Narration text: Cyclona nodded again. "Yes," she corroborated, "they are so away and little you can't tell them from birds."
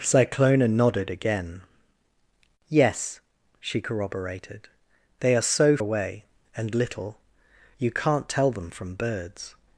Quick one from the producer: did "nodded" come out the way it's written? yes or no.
yes